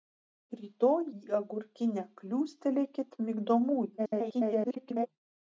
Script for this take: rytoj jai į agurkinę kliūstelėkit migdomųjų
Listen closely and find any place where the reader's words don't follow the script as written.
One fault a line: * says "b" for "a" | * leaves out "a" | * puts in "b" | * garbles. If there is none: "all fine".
* leaves out "jai"
* garbles